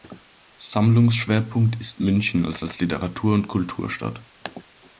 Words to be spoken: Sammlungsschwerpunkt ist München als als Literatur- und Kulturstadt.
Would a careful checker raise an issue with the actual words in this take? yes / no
no